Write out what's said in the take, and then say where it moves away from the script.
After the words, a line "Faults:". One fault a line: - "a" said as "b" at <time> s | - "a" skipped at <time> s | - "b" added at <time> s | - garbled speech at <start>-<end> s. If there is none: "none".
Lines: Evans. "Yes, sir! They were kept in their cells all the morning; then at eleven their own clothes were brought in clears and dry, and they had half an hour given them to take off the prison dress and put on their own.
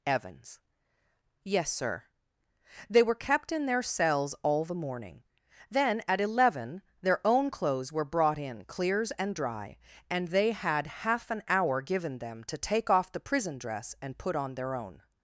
Evans. "Yes, sir! They were kept in their cells all the morning; then at eleven their own clothes were brought in clears and dry, and they had half an hour given them to take off the prison dress and put on their own.
Faults:
none